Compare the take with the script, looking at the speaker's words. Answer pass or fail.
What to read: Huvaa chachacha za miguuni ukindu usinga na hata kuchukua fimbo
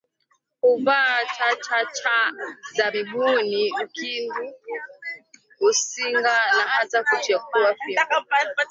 pass